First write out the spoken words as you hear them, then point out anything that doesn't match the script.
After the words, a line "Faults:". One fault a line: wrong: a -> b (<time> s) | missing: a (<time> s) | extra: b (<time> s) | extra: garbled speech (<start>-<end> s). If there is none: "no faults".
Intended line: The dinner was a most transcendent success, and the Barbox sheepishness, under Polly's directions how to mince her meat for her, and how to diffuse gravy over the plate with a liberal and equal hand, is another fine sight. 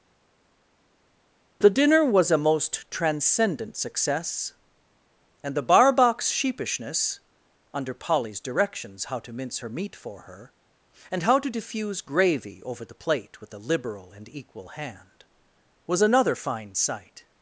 The dinner was a most transcendent success, and the Barbox sheepishness, under Polly's directions how to mince her meat for her, and how to diffuse gravy over the plate with a liberal and equal hand, was another fine sight.
Faults:
wrong: is -> was (15.9 s)